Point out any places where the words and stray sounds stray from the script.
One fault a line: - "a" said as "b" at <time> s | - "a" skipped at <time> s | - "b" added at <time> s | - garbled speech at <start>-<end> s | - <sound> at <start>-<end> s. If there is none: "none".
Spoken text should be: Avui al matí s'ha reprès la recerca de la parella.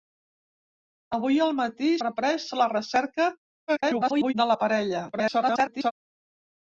- "s'ha" skipped at 1.9 s
- garbled speech at 3.7-4.3 s
- garbled speech at 5.1-5.9 s